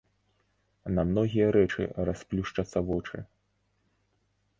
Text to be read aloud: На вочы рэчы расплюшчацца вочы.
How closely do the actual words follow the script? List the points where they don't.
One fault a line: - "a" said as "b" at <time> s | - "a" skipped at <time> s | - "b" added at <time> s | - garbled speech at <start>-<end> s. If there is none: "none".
- "вочы" said as "многія" at 1.1 s